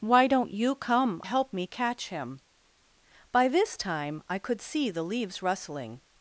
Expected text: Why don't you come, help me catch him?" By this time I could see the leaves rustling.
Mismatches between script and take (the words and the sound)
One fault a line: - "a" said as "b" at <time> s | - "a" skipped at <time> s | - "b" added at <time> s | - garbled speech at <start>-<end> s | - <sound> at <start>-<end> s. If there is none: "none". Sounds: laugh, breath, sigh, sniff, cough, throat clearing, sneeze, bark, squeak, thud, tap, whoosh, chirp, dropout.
none